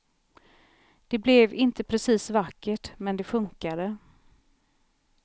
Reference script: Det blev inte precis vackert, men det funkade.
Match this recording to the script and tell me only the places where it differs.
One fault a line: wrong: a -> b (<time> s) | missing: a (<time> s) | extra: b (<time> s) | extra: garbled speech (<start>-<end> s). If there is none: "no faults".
no faults